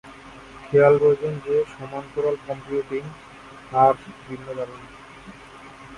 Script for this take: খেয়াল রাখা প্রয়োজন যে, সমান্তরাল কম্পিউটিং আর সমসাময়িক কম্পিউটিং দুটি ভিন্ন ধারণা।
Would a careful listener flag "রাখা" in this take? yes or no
yes